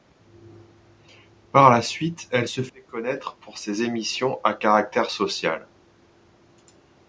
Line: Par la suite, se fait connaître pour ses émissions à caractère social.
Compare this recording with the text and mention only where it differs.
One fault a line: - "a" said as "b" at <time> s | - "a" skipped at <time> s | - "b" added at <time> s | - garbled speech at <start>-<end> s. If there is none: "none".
- "elle" added at 2.3 s